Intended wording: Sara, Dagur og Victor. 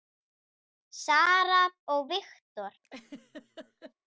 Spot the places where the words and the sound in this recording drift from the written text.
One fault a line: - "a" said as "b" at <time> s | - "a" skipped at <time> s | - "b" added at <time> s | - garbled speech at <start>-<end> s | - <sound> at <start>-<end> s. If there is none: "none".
- "Dagur" skipped at 1.6 s
- laugh at 2.8-3.9 s